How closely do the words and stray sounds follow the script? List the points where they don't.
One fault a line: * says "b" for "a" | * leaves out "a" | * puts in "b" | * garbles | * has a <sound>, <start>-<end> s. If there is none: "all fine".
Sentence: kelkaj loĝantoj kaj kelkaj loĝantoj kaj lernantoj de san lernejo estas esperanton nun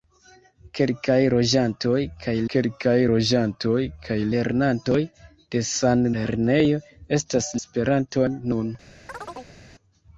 * has a chirp, 9.1-9.6 s